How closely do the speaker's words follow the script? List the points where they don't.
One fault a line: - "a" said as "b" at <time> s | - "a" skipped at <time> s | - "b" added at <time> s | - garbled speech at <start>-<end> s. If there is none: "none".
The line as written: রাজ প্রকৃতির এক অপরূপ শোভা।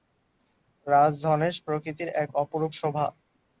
- "ধনেশ" added at 1.2 s